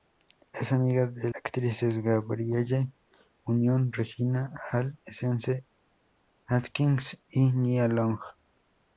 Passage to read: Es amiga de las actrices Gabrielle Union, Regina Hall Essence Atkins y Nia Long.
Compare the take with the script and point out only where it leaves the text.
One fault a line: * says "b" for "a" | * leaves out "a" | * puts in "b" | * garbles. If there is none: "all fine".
* leaves out "las"